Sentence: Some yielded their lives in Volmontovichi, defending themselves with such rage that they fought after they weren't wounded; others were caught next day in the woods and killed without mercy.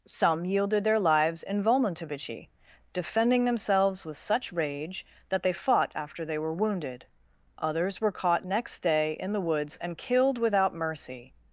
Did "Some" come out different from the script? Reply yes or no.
no